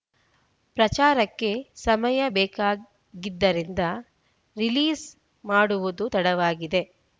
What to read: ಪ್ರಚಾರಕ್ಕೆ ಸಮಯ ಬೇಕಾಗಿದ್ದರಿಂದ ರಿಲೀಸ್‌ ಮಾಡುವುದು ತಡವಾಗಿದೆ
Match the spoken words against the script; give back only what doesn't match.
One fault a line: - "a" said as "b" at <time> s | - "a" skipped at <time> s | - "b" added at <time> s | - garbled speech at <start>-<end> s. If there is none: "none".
none